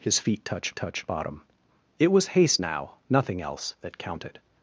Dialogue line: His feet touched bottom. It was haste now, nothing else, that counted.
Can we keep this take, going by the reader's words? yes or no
no